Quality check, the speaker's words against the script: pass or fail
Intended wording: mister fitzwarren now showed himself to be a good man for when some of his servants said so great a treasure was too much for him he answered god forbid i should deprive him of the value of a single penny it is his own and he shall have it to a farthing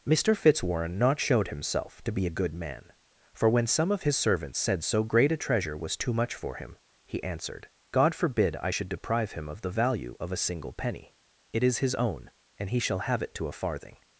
fail